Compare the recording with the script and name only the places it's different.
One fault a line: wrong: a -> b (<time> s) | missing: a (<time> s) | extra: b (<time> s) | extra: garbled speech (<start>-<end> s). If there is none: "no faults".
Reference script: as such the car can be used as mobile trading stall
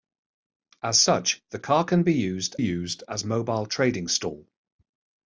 extra: used (2.6 s)